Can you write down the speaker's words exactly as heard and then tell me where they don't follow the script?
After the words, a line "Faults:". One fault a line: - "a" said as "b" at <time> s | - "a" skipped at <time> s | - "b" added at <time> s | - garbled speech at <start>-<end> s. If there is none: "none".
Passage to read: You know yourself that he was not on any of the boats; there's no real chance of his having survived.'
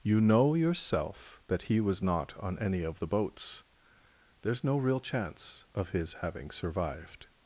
You know yourself that he was not on any of the boats; there's no real chance of his having survived.'
Faults:
none